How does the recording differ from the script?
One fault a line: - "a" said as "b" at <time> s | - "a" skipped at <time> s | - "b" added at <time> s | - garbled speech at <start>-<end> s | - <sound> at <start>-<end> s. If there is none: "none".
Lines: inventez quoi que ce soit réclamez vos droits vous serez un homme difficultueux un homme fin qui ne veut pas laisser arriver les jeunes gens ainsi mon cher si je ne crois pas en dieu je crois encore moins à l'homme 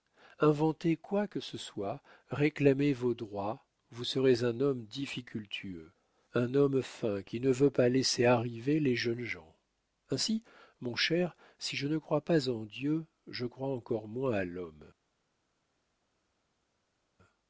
none